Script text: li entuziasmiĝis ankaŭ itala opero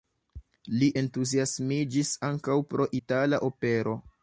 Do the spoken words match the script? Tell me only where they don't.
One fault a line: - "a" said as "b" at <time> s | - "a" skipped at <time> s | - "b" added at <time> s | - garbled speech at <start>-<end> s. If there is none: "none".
- "pro" added at 2.7 s